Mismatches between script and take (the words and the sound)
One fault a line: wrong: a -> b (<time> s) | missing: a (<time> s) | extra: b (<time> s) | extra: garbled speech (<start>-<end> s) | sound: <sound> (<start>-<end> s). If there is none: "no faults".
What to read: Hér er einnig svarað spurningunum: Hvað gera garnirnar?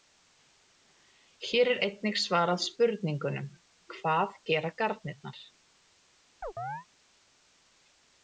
sound: chirp (6.4-6.9 s)